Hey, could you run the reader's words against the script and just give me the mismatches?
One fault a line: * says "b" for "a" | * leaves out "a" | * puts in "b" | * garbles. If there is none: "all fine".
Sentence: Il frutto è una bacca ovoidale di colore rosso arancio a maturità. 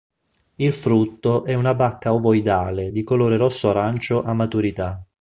all fine